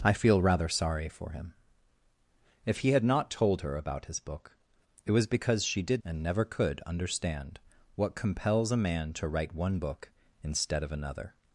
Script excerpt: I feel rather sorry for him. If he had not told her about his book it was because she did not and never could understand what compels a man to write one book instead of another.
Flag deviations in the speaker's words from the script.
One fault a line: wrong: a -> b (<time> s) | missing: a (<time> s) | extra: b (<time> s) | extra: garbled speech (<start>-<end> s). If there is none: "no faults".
missing: not (6.0 s)